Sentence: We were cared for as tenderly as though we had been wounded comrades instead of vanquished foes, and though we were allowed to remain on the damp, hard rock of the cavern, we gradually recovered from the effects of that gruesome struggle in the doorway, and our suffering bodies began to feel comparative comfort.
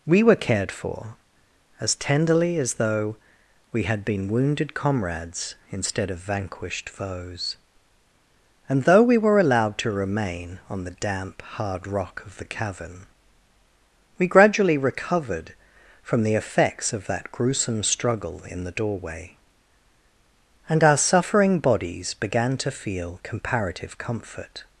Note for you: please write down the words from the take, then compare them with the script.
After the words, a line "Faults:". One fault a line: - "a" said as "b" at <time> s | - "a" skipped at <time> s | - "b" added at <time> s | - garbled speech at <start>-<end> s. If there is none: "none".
We were cared for as tenderly as though we had been wounded comrades instead of vanquished foes, and though we were allowed to remain on the damp, hard rock of the cavern, we gradually recovered from the effects of that gruesome struggle in the doorway, and our suffering bodies began to feel comparative comfort.
Faults:
none